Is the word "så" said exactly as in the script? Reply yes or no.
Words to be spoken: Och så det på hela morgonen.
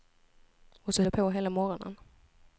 yes